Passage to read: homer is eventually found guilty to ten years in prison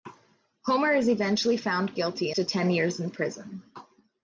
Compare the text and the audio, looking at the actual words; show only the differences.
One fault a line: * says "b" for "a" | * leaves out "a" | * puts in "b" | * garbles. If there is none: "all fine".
all fine